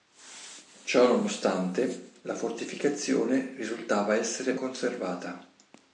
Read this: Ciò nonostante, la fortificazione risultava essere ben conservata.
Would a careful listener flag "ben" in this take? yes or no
yes